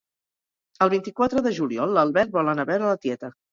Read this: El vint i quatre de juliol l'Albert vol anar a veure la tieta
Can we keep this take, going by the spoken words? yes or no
yes